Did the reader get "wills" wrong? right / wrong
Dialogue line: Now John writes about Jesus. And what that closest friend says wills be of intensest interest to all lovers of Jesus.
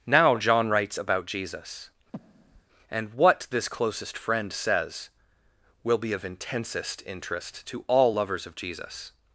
wrong